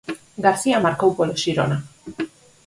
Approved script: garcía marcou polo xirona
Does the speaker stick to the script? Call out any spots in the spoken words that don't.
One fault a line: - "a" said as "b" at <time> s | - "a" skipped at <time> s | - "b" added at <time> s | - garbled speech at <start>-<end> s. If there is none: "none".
none